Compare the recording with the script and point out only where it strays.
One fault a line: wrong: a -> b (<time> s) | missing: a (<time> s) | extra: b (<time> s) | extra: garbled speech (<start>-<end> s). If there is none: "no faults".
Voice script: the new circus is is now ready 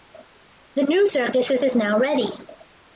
no faults